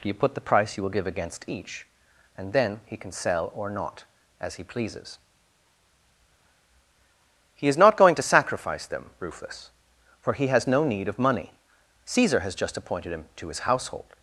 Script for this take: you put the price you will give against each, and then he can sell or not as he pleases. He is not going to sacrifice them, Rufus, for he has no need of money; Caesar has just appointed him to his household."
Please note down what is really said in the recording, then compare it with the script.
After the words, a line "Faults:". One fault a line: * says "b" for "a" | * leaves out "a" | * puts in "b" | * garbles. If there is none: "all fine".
you put the price you will give against each, and then he can sell or not as he pleases. He is not going to sacrifice them, Rufus, for he has no need of money; Caesar has just appointed him to his household."
Faults:
all fine